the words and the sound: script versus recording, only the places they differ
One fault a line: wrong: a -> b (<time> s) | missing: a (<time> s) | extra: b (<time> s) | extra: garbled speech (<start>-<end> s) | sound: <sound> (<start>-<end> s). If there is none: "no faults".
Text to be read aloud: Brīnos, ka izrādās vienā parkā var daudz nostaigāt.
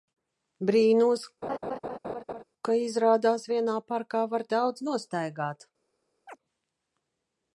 sound: laugh (1.4-2.4 s)
sound: chirp (6.3-6.4 s)